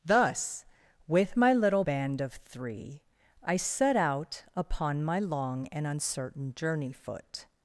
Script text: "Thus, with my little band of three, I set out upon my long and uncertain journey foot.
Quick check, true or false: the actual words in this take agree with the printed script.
true